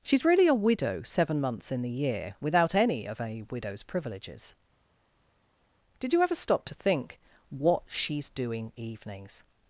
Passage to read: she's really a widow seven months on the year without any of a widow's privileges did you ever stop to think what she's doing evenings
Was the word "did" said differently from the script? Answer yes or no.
no